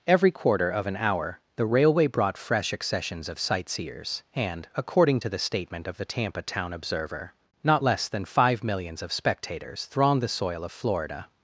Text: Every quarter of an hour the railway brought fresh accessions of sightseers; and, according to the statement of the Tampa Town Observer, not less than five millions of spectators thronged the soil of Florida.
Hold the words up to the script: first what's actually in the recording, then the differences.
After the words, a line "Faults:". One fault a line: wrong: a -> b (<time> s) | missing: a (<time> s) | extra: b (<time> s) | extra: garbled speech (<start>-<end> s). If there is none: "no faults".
Every quarter of an hour the railway brought fresh accessions of sightseers; and, according to the statement of the Tampa Town Observer, not less than five millions of spectators thronged the soil of Florida.
Faults:
no faults